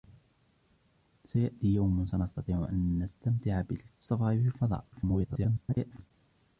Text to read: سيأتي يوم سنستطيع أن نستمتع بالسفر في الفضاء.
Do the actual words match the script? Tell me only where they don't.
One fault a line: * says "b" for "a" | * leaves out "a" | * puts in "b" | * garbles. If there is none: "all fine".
* garbles